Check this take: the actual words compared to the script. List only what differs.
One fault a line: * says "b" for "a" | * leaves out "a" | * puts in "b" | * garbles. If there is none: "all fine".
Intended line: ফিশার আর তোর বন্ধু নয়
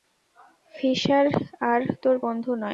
all fine